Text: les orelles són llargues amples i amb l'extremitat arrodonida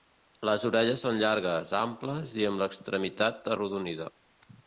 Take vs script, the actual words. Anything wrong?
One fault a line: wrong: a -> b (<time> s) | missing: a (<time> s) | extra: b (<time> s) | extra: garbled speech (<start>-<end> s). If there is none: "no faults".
no faults